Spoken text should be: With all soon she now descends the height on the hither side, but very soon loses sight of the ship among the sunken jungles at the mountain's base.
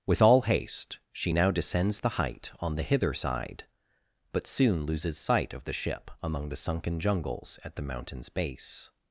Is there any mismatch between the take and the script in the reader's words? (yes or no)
yes